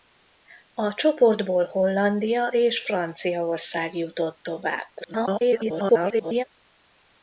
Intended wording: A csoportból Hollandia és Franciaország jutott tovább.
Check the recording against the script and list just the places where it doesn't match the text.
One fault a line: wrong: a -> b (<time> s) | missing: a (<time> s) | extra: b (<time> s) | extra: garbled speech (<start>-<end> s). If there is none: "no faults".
extra: garbled speech (5.0-6.4 s)